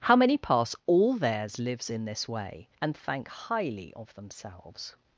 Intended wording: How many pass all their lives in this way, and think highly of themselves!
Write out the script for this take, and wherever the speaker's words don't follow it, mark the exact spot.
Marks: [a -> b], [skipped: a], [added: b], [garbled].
How many pass all [their -> theirs] lives in this way, and [think -> thank] highly of themselves!